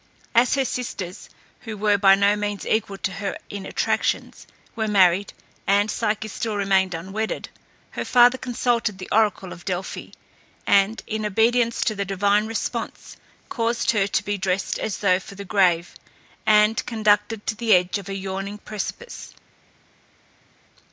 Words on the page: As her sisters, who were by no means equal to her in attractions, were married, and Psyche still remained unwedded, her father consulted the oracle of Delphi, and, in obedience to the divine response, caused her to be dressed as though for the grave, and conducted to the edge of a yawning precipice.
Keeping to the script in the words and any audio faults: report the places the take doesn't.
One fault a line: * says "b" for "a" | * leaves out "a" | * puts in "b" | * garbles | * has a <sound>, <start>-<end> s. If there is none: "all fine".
all fine